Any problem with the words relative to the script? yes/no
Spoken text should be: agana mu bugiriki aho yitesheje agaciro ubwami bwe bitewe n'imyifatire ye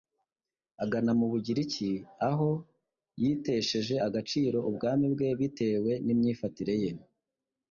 no